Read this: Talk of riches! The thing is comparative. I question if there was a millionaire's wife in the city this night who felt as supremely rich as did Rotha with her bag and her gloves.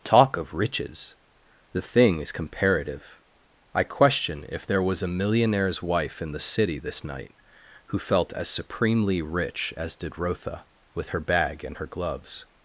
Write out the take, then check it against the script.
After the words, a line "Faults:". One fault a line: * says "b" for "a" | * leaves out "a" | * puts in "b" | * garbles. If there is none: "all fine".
Talk of riches! The thing is comparative. I question if there was a millionaire's wife in the city this night who felt as supremely rich as did Rotha with her bag and her gloves.
Faults:
all fine